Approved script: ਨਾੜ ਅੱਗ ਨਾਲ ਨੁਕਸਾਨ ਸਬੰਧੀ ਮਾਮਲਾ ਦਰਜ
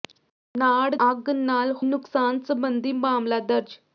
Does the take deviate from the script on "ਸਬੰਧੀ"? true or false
false